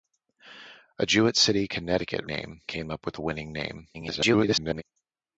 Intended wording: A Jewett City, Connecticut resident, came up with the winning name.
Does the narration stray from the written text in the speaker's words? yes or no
yes